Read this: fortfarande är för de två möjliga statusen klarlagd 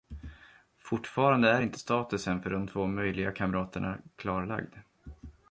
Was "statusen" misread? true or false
true